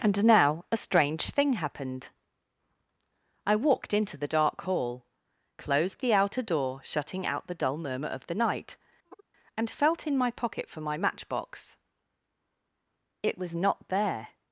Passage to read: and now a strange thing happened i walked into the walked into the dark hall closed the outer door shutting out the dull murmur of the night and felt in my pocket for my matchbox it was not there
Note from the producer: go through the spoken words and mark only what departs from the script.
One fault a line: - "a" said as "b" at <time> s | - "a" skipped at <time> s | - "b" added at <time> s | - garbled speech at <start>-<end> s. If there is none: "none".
- "walked into the" skipped at 4.3 s